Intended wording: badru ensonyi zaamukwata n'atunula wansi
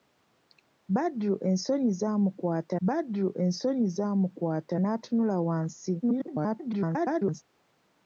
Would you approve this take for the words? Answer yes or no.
no